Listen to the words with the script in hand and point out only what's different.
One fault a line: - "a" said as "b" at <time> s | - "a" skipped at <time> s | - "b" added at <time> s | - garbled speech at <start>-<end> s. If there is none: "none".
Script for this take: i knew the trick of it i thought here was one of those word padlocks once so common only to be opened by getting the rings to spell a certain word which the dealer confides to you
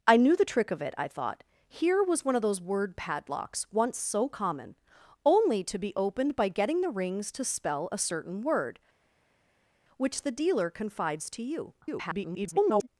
- garbled speech at 11.8-12.9 s